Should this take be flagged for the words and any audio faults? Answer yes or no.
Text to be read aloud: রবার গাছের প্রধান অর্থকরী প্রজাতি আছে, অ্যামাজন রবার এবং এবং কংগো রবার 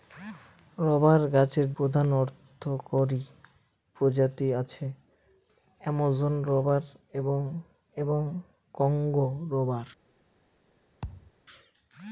yes